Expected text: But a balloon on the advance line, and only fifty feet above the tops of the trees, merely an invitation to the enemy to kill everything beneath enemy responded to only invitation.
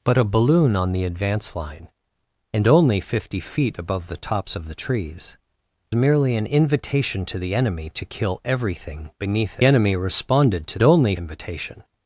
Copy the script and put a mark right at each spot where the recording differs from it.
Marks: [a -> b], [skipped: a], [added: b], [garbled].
But a balloon on the advance line, and only fifty feet above the tops of the trees, merely an invitation to the enemy to kill everything beneath enemy responded to only invitation.